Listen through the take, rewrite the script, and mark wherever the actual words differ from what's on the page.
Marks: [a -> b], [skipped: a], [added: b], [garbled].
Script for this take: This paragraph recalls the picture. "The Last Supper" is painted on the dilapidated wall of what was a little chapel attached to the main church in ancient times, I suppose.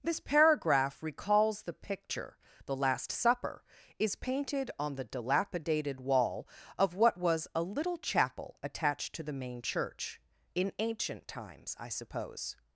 This paragraph recalls the picture. "The Last Supper" is painted on the dilapidated wall of what was a little chapel attached to the main church in ancient times, I suppose.